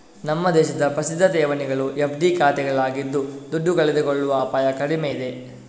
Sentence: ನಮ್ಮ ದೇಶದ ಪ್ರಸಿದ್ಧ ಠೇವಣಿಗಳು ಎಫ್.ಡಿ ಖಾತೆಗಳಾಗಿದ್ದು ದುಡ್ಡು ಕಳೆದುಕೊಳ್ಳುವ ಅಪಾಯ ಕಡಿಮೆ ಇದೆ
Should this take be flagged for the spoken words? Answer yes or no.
no